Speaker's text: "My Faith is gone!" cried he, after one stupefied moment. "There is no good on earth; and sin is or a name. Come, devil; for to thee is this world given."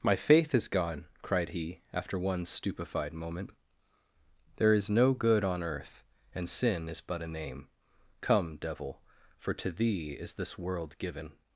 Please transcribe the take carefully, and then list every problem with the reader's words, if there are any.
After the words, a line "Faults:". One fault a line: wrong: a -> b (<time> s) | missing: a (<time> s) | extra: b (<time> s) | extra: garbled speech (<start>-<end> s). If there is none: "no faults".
"My Faith is gone!" cried he, after one stupefied moment. "There is no good on earth; and sin is but a name. Come, devil; for to thee is this world given."
Faults:
wrong: or -> but (7.0 s)